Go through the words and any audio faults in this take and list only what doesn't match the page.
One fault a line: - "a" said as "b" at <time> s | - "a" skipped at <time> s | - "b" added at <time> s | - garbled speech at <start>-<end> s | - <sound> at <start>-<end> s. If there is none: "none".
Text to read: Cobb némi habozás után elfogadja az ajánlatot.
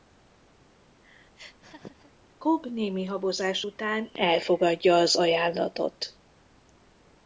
- laugh at 1.4-2.1 s